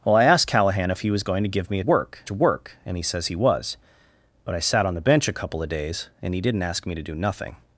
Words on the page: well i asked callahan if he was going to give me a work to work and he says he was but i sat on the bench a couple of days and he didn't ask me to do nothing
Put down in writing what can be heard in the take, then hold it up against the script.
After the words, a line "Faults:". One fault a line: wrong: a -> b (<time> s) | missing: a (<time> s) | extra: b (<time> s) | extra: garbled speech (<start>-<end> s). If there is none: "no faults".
well i asked callahan if he was going to give me a work to work and he says he was but i sat on the bench a couple of days and he didn't ask me to do nothing
Faults:
no faults